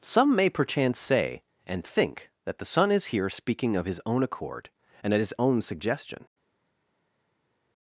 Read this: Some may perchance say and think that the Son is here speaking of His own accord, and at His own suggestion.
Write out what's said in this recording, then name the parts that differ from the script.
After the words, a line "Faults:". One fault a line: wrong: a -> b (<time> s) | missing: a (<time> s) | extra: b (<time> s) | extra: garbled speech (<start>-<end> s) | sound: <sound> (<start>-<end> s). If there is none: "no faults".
Some may perchance say and think that the Son is here speaking of His own accord, and at His own suggestion.
Faults:
no faults